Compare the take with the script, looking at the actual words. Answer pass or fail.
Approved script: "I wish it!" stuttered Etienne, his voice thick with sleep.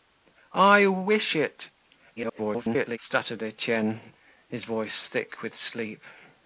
fail